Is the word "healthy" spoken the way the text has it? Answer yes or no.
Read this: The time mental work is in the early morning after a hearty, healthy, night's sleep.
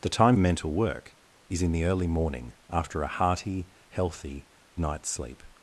yes